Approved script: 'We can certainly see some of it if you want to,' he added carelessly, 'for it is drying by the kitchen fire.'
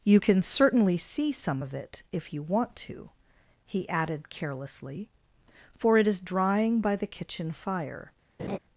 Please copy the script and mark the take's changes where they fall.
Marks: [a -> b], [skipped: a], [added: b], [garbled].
['We -> You] can certainly see some of it if you want to,' he added carelessly, 'for it is drying by the kitchen fire.'